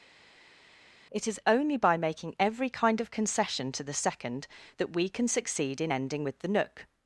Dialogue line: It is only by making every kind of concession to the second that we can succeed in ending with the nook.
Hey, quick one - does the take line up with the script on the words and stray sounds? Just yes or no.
yes